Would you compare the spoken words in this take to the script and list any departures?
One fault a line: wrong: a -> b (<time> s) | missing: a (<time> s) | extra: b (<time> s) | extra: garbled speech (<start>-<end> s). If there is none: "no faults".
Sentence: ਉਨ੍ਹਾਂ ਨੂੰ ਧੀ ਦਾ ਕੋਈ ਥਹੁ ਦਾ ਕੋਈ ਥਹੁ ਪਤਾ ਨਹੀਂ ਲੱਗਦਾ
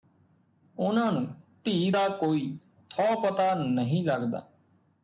missing: ਦਾ ਕੋਈ ਥਹੁ (3.2 s)